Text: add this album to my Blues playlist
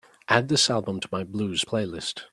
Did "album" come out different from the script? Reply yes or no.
no